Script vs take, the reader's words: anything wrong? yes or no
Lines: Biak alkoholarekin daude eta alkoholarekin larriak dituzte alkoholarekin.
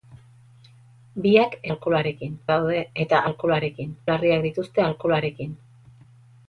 no